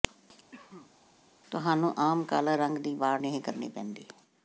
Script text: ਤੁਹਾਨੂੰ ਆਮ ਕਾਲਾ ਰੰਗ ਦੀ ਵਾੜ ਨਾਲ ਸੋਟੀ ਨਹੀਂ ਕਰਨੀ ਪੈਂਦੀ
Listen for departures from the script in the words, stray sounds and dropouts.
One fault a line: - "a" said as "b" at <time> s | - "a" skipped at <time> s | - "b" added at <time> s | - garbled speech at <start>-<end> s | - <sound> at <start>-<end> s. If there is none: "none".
- cough at 0.5-0.9 s
- "ਨਾਲ ਸੋਟੀ" skipped at 3.2 s